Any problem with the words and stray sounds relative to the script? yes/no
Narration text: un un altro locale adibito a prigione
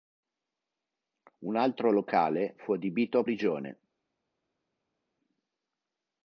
yes